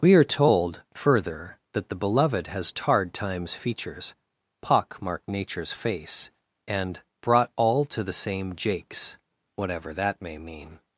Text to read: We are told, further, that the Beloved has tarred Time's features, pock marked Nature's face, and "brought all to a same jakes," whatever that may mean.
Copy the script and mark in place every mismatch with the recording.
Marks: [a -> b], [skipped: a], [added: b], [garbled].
We are told, further, that the Beloved has tarred Time's features, pock marked Nature's face, and "brought all to [a -> the] same jakes," whatever that may mean.